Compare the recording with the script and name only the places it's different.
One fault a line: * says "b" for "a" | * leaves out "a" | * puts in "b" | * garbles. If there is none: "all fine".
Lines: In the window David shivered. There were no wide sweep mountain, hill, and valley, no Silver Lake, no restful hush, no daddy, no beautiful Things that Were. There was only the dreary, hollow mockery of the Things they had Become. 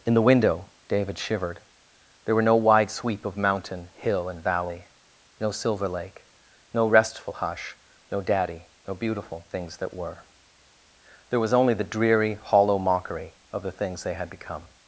* puts in "of"